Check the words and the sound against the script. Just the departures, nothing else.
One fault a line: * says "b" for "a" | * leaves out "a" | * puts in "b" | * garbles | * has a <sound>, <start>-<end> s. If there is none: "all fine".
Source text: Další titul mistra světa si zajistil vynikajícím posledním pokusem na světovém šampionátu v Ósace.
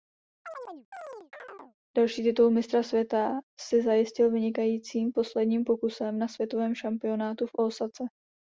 * has a chirp, 0.4-1.8 s